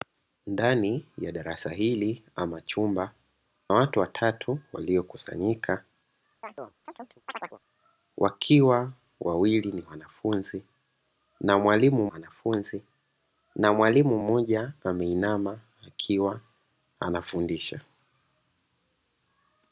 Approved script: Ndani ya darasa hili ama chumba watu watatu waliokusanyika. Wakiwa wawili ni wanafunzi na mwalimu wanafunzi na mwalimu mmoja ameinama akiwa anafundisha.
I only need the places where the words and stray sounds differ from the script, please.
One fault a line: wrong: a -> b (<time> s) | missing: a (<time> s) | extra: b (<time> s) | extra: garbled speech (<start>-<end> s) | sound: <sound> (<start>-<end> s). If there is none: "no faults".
sound: chirp (6.4-7.6 s)